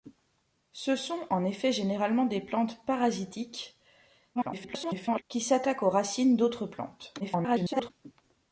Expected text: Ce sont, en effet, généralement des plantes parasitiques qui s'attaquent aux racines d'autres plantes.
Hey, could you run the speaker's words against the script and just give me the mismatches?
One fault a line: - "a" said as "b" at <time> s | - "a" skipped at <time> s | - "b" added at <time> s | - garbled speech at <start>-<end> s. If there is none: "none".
- garbled speech at 4.3-5.2 s
- garbled speech at 7.2-7.9 s